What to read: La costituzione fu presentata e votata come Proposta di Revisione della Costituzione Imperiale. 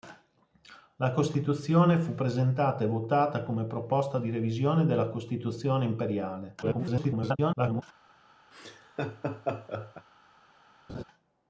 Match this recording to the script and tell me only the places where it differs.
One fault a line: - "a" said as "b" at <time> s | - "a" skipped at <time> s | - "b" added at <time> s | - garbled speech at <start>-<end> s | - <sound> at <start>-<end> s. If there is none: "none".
- garbled speech at 6.6-7.8 s
- laugh at 8.5-10.1 s
- laugh at 10.9-11.0 s